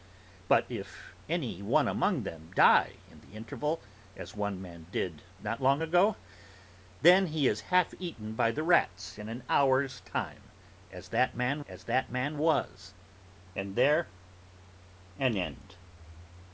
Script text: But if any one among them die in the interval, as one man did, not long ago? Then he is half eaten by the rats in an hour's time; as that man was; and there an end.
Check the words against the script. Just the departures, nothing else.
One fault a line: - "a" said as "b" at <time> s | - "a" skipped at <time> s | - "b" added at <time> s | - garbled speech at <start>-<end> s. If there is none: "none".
- "as that man" added at 11.6 s